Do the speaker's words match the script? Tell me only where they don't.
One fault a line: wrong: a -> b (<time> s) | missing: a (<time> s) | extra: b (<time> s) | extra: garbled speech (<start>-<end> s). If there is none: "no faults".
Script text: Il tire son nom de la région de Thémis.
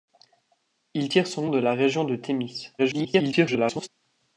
missing: nom (1.5 s)
extra: garbled speech (2.8-3.9 s)